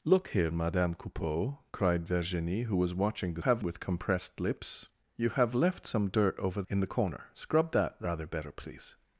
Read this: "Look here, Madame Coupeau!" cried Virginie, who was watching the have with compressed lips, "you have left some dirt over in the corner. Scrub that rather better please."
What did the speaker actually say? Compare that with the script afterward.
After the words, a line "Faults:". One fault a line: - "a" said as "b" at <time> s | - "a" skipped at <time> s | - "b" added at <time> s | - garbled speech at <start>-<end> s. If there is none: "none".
"Look here, Madame Coupeau!" cried Virginie, who was watching the have with compressed lips, "you have left some dirt over in the corner. Scrub that rather better please."
Faults:
none